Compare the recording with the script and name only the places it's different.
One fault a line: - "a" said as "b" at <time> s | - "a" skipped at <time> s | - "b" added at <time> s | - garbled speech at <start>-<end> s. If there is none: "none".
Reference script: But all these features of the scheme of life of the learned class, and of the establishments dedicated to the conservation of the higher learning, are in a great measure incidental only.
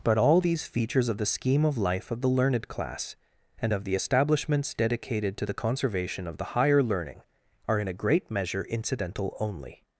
none